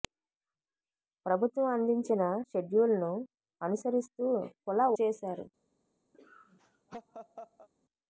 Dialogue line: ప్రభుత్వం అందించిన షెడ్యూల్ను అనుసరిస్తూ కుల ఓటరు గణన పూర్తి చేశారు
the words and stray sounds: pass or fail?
fail